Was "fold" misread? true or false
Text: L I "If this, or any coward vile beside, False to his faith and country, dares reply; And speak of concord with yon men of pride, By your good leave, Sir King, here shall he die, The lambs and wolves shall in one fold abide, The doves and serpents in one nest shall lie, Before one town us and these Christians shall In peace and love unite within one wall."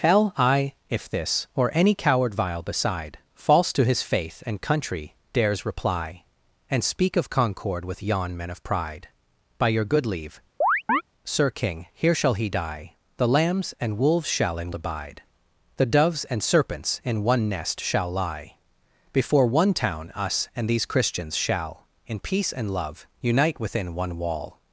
true